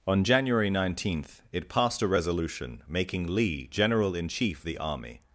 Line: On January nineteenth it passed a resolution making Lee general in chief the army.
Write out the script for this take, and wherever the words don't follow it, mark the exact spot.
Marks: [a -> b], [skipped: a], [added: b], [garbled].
On January nineteenth it passed a resolution making Lee general in chief the army.